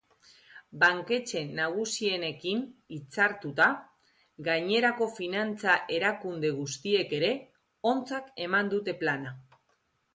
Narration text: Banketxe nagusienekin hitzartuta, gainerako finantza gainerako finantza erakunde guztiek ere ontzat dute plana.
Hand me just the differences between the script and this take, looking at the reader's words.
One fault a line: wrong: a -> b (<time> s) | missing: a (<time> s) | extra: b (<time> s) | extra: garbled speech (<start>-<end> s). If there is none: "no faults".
missing: gainerako finantza (5.8 s)
extra: eman (8.5 s)